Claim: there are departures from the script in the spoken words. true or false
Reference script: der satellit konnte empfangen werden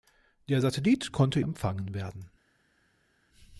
false